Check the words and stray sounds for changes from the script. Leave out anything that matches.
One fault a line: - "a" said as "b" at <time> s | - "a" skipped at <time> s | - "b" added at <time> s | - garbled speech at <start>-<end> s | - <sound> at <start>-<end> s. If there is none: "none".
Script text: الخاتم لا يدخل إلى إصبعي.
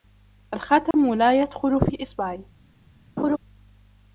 - dropout at 0.9-0.9 s
- "إلى" said as "في" at 1.8 s
- laugh at 3.2-3.4 s